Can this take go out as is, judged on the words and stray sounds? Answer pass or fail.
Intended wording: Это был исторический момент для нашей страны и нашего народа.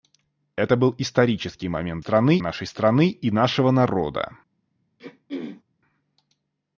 fail